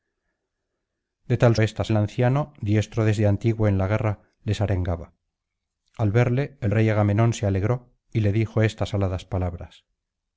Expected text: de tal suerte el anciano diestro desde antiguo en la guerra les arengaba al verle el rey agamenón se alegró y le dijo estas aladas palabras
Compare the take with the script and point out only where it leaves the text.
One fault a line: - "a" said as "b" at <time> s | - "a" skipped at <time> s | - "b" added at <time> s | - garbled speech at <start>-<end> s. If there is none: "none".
- "suerte" said as "estas" at 1.6 s